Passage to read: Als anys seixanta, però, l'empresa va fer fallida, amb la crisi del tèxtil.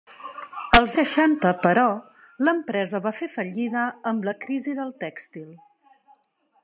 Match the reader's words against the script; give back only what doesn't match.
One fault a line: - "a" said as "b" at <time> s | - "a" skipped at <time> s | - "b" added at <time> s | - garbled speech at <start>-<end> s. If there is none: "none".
- "anys" skipped at 0.9 s